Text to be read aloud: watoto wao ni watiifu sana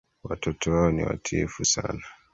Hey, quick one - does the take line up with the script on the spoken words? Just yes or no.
yes